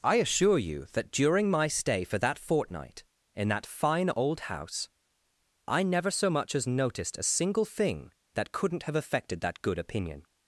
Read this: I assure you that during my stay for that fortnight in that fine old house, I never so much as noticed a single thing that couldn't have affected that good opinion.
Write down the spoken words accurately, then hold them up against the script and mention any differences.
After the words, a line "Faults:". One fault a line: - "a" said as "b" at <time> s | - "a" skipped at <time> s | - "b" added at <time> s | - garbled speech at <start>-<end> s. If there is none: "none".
I assure you that during my stay for that fortnight in that fine old house, I never so much as noticed a single thing that couldn't have affected that good opinion.
Faults:
none